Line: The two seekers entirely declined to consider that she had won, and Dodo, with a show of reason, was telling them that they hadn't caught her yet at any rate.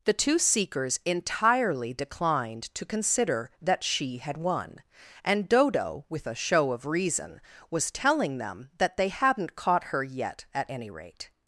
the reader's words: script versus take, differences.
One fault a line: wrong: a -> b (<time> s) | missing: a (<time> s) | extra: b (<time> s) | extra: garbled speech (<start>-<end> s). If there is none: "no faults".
no faults